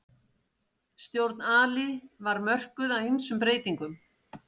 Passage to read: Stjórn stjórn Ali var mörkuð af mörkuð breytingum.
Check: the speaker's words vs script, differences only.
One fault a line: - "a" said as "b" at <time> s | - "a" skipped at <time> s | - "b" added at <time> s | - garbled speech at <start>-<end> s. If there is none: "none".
- "stjórn" skipped at 1.4 s
- "mörkuð" said as "ýmsum" at 3.1 s